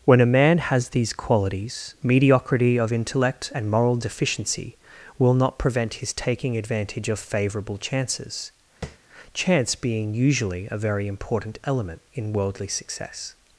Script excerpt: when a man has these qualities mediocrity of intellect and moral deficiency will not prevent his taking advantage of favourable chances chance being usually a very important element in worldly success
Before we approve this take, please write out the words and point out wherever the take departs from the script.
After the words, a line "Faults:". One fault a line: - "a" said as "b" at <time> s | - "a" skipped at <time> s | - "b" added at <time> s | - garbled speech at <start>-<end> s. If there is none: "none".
when a man has these qualities mediocrity of intellect and moral deficiency will not prevent his taking advantage of favourable chances chance being usually a very important element in worldly success
Faults:
none